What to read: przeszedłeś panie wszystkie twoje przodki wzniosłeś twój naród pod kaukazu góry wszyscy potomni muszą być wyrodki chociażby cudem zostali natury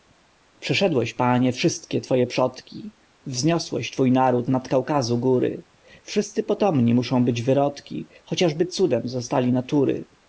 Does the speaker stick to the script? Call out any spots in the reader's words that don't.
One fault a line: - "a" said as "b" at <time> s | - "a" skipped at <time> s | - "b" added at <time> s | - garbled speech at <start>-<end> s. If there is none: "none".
- "pod" said as "nad" at 4.5 s